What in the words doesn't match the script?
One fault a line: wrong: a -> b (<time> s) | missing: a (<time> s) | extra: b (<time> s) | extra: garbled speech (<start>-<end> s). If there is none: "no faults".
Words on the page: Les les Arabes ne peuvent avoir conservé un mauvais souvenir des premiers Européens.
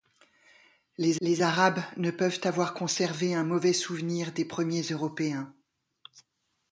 no faults